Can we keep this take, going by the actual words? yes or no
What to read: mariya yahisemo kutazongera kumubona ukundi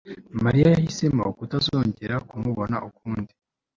yes